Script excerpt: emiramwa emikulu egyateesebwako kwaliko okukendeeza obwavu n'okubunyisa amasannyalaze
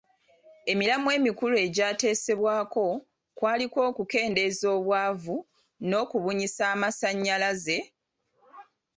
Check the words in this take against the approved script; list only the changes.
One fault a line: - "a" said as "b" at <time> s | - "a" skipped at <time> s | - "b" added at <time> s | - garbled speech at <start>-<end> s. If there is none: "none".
none